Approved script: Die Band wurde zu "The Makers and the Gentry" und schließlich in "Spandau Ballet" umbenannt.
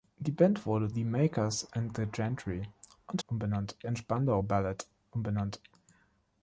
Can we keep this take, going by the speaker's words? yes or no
no